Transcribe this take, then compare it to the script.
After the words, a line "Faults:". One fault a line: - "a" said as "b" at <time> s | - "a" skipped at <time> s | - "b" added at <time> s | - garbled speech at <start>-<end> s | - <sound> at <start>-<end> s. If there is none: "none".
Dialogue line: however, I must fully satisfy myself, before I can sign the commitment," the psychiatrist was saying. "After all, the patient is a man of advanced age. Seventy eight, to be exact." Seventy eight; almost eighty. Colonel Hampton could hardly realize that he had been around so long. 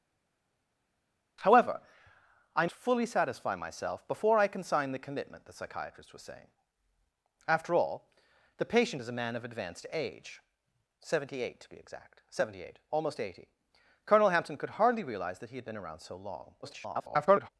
however, I fully satisfy myself, before I can sign the commitment," the psychiatrist was saying. "After all, the patient is a man of advanced age. Seventy eight, to be exact." Seventy eight; almost eighty. Colonel Hampton could hardly realize that he had been around so long. [garbled]
Faults:
- "must" skipped at 2.7 s
- garbled speech at 16.6-17.5 s